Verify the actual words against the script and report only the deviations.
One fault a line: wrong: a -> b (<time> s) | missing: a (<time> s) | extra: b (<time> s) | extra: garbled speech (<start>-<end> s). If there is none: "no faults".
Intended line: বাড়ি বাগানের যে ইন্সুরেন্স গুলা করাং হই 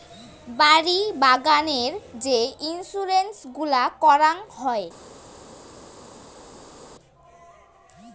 no faults